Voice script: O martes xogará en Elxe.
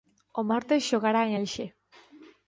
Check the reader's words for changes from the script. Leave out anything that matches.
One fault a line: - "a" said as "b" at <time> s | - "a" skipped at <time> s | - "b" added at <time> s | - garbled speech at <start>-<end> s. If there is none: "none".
none